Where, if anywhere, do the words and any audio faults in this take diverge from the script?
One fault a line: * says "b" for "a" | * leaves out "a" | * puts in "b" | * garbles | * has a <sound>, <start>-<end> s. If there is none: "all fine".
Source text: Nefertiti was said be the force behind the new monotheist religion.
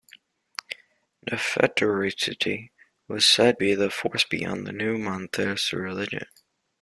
all fine